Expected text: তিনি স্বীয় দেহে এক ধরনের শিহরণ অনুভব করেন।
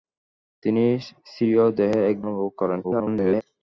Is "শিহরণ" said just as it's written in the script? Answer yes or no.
no